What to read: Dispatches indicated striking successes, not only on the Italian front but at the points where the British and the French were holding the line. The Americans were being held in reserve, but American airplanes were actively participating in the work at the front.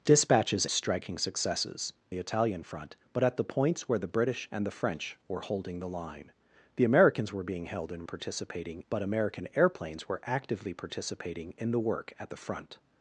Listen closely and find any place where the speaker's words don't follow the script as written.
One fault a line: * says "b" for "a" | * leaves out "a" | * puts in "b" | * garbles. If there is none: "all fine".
* leaves out "indicated"
* leaves out "not only on"
* says "participating" for "reserve"